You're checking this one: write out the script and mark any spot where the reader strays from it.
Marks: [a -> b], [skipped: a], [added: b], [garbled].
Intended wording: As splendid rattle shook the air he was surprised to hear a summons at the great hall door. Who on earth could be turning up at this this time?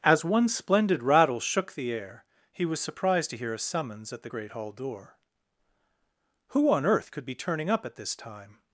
As [added: one] splendid rattle shook the air he was surprised to hear a summons at the great hall door. Who on earth could be turning up at this [skipped: this] time?